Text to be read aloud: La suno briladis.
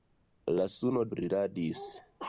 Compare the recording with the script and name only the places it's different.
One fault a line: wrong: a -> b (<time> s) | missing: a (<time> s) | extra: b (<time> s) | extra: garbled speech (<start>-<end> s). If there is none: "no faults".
no faults